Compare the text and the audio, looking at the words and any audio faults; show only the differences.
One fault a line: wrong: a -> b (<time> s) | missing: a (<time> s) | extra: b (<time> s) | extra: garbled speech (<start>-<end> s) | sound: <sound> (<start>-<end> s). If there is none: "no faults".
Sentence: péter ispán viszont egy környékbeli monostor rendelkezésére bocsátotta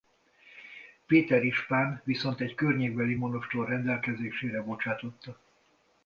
no faults